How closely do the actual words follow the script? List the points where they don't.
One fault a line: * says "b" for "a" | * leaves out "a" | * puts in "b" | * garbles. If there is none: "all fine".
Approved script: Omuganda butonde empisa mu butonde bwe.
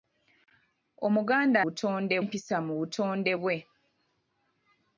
all fine